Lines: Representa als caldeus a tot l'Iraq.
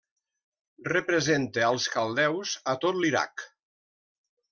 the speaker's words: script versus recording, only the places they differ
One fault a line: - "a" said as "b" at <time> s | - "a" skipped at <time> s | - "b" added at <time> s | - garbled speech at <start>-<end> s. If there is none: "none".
none